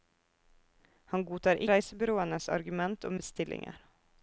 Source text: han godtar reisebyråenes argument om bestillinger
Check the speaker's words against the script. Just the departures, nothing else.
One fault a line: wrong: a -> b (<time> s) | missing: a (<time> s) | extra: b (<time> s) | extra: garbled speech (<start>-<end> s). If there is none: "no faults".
no faults